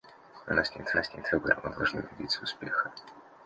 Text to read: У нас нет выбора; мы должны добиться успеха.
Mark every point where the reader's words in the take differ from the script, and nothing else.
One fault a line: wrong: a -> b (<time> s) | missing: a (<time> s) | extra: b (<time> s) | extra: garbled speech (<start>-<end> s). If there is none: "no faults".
extra: нас нет (0.9 s)